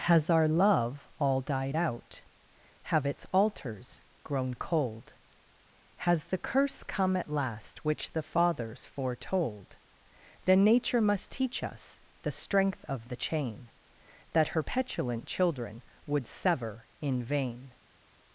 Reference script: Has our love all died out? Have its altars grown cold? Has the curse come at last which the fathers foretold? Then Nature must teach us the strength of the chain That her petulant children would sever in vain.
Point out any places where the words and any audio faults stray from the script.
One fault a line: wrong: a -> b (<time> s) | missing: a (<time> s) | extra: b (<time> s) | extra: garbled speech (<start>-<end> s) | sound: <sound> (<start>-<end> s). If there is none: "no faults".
no faults